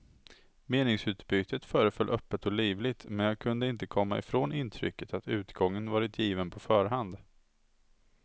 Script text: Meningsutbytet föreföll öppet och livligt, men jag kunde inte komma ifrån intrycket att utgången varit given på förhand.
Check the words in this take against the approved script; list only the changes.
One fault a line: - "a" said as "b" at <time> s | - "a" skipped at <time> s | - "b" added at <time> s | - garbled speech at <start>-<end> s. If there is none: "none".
none